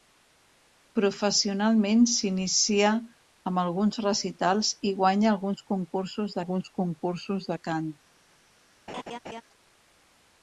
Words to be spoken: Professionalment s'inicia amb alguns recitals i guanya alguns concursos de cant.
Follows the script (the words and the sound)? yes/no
no